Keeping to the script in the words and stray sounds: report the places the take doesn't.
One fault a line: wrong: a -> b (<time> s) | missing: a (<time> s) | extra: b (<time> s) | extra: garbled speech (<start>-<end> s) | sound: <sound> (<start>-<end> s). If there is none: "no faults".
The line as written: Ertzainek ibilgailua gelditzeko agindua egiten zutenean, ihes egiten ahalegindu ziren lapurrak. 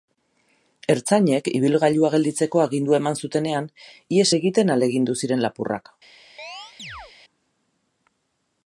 wrong: egiten -> eman (3.0 s)
sound: chirp (6.4-7.1 s)